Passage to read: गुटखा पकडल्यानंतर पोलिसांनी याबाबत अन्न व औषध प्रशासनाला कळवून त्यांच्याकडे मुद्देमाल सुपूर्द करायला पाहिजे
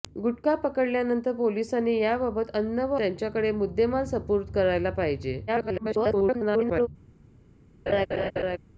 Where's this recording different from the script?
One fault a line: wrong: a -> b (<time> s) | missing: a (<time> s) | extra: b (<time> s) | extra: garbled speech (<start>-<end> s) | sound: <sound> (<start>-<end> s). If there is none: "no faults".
missing: औषध प्रशासनाला कळवून (3.0 s)
extra: garbled speech (5.5-6.9 s)
sound: laugh (7.9-8.6 s)